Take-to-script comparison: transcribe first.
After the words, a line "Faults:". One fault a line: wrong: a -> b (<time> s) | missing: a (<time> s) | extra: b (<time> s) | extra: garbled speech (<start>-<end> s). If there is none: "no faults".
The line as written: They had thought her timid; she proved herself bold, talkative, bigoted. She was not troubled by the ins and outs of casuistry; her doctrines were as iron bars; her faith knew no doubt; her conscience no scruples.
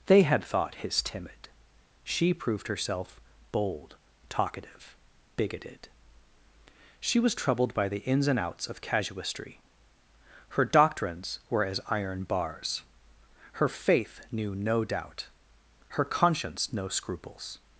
They had thought his timid; she proved herself bold, talkative, bigoted. She was troubled by the ins and outs of casuistry; her doctrines were as iron bars; her faith knew no doubt; her conscience no scruples.
Faults:
wrong: her -> his (0.8 s)
missing: not (7.3 s)